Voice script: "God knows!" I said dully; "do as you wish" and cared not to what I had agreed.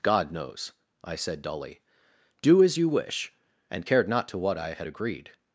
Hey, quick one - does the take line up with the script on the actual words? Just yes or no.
yes